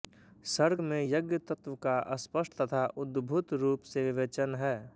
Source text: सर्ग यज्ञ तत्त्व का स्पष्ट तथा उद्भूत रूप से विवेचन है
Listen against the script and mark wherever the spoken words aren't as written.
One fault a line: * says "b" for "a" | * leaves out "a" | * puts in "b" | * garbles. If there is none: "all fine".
* puts in "में"